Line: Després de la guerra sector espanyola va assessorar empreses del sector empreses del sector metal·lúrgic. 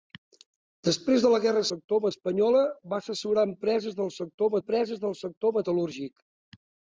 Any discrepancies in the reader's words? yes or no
no